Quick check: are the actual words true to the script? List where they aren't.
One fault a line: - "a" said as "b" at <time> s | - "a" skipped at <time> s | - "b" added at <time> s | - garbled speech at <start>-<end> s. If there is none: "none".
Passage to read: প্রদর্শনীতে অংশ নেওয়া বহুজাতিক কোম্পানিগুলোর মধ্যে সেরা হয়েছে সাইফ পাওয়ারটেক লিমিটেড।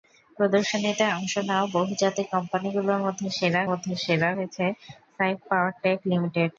- "মধ্যে সেরা" added at 3.7 s